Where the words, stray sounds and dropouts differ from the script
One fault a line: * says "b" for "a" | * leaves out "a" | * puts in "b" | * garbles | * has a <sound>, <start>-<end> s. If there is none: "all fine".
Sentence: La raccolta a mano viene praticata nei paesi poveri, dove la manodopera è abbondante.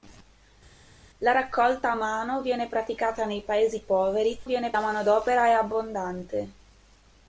* says "viene" for "dove"